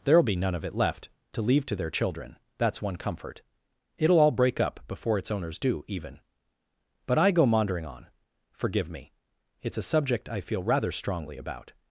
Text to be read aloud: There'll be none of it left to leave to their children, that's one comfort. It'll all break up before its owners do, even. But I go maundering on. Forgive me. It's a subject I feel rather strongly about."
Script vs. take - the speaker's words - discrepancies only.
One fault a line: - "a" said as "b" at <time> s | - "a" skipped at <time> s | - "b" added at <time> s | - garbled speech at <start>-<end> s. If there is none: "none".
none